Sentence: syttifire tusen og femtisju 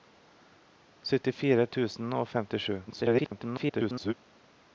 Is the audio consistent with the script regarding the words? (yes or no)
no